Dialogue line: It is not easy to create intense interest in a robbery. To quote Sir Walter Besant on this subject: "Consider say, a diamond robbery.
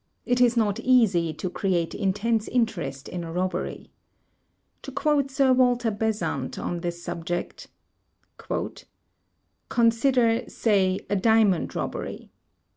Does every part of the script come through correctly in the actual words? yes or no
yes